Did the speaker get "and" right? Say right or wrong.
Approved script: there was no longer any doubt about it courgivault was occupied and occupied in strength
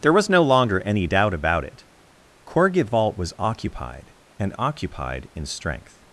right